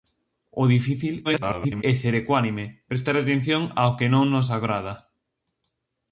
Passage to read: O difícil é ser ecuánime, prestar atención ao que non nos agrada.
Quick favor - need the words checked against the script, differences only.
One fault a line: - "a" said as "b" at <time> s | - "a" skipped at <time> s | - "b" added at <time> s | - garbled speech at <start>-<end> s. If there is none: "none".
- garbled speech at 1.2-1.8 s